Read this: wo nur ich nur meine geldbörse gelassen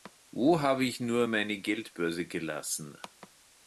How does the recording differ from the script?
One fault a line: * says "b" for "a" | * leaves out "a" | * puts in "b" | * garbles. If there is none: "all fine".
* says "habe" for "nur"